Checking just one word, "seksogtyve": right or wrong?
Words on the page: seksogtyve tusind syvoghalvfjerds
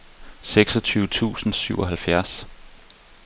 right